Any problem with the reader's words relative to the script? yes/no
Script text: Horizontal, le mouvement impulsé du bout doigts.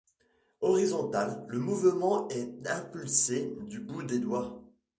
yes